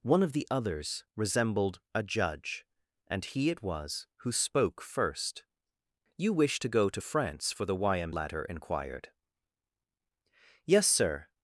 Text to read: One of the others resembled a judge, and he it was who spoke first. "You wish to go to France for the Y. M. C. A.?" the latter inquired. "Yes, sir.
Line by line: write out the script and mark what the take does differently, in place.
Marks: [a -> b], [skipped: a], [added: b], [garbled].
One of the others resembled a judge, and he it was who spoke first. "You wish to go to France for the Y. M. [skipped: C. A.?" the] latter inquired. "Yes, sir.